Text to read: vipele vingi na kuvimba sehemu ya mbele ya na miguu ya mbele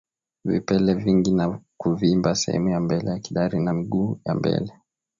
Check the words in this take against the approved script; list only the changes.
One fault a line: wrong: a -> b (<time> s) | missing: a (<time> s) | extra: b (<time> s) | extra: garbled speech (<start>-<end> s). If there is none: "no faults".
extra: kidari (3.2 s)